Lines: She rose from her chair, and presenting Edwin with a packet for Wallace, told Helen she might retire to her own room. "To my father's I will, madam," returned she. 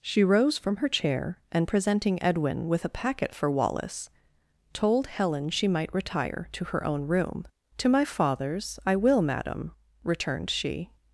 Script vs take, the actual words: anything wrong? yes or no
no